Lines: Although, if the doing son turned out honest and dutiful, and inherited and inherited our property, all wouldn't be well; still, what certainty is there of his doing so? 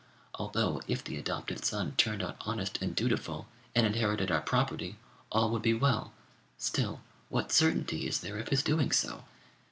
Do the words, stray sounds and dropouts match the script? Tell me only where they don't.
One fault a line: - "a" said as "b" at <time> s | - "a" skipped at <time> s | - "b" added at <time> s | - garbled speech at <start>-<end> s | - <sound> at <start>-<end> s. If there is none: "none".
- "doing" said as "adopted" at 1.2 s
- "and inherited" skipped at 4.3 s
- "wouldn't" said as "would" at 5.5 s